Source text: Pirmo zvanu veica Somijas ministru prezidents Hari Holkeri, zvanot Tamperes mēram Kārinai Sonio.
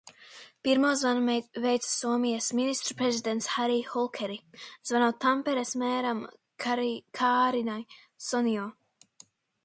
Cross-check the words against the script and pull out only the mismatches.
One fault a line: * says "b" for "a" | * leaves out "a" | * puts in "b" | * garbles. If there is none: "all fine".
all fine